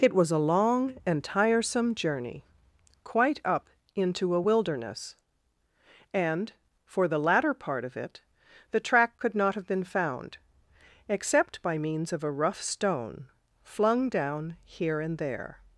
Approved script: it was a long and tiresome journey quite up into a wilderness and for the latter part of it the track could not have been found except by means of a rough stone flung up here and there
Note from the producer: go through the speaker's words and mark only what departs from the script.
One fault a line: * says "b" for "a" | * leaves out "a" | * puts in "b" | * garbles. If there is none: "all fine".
* says "down" for "up"